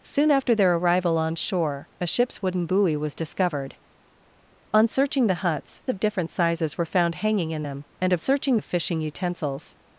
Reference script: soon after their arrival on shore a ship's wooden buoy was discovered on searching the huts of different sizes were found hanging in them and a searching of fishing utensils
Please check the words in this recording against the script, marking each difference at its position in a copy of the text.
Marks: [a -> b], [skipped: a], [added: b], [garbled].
soon after their arrival on shore a ship's wooden buoy was discovered on searching the huts of different sizes were found hanging in them and a searching of fishing utensils